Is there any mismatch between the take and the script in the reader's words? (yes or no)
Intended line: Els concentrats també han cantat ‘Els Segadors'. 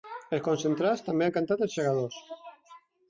no